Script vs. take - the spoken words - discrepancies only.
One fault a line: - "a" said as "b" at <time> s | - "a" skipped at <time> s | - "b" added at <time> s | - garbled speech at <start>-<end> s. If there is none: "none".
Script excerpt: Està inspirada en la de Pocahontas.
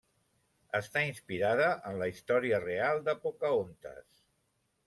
- "història real" added at 2.1 s